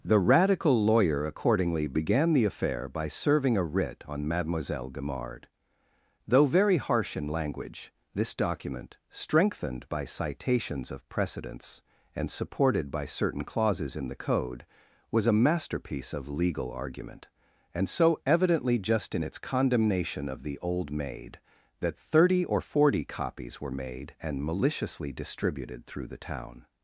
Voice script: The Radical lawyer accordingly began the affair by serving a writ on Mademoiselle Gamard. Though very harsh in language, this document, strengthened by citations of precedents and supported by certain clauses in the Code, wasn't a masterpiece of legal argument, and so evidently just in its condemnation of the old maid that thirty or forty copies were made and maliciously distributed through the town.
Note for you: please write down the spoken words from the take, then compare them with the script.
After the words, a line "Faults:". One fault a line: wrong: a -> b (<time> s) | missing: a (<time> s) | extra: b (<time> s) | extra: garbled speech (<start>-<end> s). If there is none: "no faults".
The Radical lawyer accordingly began the affair by serving a writ on Mademoiselle Gamard. Though very harsh in language, this document, strengthened by citations of precedents and supported by certain clauses in the Code, was a masterpiece of legal argument, and so evidently just in its condemnation of the old maid that thirty or forty copies were made and maliciously distributed through the town.
Faults:
wrong: wasn't -> was (15.1 s)